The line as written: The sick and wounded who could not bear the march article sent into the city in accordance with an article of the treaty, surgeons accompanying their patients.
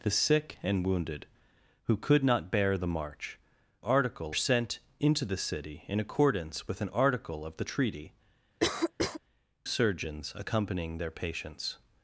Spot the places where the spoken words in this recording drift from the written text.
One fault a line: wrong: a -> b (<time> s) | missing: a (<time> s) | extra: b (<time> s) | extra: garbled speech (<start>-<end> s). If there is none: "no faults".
no faults